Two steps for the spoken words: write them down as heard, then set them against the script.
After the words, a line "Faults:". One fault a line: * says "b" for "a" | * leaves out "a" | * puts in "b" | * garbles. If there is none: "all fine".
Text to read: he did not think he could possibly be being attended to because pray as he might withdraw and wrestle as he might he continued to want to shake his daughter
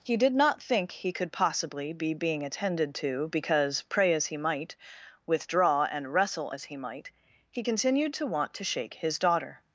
he did not think he could possibly be being attended to because pray as he might withdraw and wrestle as he might he continued to want to shake his daughter
Faults:
all fine